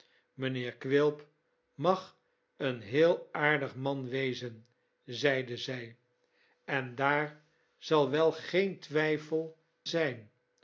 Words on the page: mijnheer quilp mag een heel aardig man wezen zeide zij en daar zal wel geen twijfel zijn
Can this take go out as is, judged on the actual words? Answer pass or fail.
pass